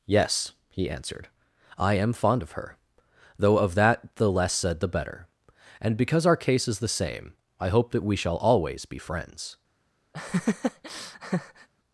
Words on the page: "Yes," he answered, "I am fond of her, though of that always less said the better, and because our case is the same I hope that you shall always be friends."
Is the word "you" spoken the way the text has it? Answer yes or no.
no